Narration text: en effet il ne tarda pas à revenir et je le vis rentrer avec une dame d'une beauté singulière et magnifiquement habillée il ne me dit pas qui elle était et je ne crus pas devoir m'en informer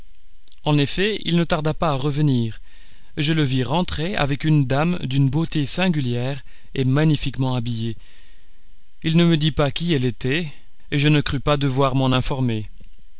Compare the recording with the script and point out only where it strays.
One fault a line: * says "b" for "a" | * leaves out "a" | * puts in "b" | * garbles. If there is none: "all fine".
all fine